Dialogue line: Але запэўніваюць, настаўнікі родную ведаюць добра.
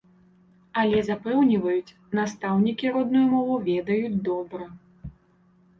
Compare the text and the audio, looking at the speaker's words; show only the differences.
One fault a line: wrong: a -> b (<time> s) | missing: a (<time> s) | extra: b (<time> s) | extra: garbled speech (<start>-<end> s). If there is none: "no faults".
extra: мову (3.4 s)